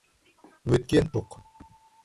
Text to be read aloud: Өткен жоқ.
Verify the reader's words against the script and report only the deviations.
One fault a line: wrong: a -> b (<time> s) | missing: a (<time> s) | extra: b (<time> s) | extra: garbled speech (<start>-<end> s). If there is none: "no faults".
no faults